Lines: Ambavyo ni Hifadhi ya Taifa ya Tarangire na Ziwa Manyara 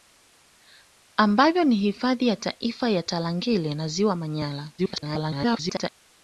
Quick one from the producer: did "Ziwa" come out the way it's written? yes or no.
yes